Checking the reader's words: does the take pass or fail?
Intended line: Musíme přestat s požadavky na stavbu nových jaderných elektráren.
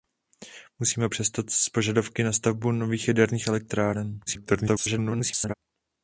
fail